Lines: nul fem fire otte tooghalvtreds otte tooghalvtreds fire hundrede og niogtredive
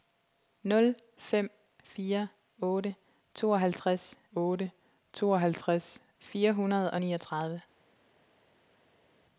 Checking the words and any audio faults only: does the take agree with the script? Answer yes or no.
yes